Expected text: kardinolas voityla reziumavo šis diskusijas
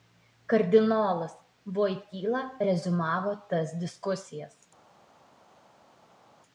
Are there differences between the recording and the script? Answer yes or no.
yes